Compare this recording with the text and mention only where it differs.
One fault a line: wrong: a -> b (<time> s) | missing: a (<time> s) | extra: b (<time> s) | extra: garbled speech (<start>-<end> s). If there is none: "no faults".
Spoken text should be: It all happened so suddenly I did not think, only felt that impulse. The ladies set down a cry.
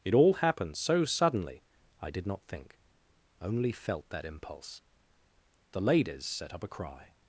wrong: down -> up (6.5 s)